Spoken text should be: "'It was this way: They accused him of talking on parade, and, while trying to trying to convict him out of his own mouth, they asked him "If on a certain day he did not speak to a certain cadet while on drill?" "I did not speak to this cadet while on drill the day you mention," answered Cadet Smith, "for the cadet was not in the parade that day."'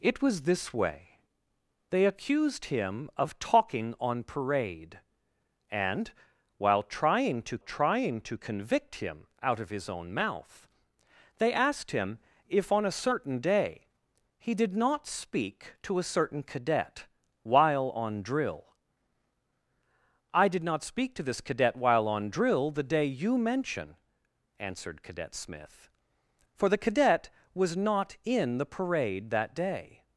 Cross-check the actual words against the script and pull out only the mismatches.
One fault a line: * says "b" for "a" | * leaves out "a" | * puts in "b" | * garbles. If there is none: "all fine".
all fine